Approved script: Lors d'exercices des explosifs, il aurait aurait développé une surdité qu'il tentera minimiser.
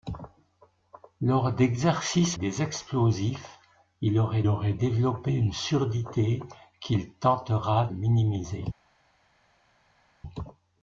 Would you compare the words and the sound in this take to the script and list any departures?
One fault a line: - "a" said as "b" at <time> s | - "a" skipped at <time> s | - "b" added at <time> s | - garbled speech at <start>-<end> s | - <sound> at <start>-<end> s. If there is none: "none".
none